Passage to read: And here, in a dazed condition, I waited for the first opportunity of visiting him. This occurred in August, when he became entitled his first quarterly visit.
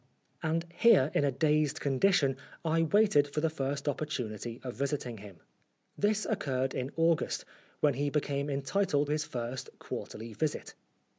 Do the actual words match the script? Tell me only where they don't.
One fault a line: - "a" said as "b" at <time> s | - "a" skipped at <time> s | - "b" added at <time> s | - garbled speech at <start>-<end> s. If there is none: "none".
none